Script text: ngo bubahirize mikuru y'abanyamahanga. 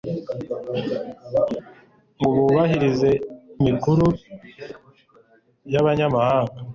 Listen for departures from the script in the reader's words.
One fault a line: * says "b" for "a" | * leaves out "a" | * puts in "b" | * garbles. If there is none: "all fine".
all fine